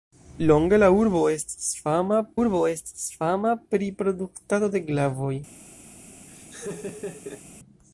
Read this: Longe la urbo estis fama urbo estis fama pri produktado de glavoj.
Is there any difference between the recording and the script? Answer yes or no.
no